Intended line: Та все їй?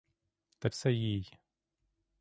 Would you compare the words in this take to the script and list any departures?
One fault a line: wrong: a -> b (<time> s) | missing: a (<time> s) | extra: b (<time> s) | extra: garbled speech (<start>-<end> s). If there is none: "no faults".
no faults